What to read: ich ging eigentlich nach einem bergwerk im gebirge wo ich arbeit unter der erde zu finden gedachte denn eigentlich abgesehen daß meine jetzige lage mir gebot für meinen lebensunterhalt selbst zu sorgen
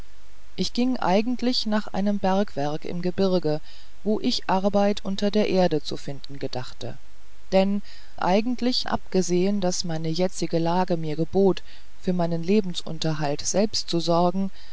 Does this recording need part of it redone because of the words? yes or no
no